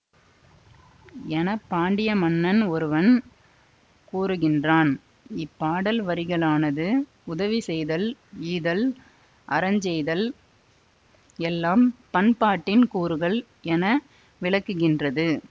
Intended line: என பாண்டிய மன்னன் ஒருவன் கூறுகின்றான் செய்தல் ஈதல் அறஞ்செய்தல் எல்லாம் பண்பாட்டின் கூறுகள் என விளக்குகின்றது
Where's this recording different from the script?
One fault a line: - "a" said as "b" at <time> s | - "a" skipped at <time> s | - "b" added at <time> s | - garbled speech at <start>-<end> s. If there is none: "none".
- "இப்பாடல் வரிகளானது உதவி" added at 5.4 s